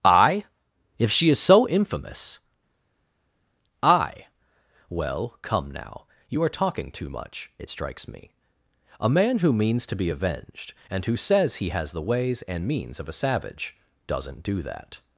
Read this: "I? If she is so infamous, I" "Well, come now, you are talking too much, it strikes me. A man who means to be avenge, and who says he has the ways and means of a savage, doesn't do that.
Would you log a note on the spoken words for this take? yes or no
yes